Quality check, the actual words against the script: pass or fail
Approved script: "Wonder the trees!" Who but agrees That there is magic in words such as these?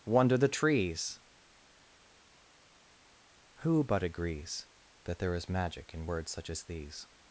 pass